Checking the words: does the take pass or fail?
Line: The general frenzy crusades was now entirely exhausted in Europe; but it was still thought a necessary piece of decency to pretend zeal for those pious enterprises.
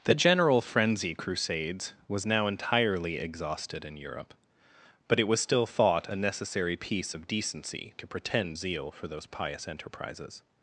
pass